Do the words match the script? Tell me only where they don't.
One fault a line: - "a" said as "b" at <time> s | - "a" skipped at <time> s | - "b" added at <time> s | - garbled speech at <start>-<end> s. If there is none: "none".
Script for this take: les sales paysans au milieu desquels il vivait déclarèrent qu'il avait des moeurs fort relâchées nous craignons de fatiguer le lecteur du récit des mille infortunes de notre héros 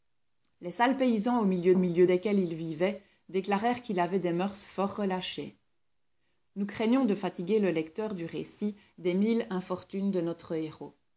- "milieu" added at 1.8 s